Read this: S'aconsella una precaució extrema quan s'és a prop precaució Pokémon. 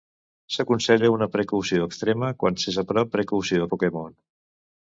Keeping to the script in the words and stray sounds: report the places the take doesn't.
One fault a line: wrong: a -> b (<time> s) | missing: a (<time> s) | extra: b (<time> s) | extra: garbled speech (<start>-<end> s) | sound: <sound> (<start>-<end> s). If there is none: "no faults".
no faults